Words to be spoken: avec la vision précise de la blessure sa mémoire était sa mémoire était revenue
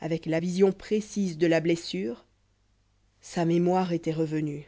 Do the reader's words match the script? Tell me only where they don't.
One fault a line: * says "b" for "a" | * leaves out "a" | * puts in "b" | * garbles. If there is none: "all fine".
* leaves out "sa mémoire était"